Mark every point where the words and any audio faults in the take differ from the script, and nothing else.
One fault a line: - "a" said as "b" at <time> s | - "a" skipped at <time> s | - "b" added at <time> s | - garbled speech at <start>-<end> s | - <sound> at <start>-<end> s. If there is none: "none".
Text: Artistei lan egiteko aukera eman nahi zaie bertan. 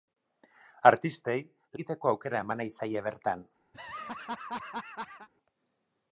- "lan" skipped at 1.4 s
- laugh at 3.7-5.3 s